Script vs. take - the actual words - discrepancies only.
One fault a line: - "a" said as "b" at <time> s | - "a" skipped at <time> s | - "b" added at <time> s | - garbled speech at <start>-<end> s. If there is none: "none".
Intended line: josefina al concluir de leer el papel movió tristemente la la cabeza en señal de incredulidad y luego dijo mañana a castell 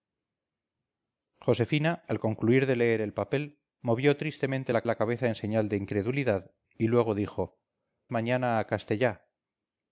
none